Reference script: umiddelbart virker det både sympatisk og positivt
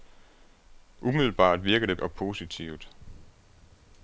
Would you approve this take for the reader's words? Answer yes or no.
no